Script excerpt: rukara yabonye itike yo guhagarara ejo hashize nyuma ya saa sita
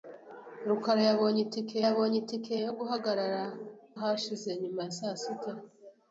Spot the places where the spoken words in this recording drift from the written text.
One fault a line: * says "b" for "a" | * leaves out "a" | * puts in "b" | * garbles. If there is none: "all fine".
* puts in "yabonye itike"
* leaves out "ejo"